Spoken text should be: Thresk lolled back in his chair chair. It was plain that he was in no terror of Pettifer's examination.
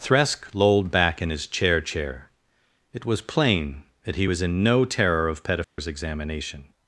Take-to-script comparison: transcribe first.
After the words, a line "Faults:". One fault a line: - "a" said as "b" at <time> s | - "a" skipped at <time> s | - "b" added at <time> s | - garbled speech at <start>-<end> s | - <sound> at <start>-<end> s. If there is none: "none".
Thresk lolled back in his chair chair. It was plain that he was in no terror of Pettifer's examination.
Faults:
- dropout at 5.6-5.8 s